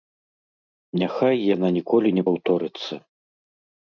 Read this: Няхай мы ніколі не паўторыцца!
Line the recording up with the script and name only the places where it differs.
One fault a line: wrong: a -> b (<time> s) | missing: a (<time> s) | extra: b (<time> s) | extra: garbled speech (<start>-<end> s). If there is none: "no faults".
wrong: мы -> яна (1.5 s)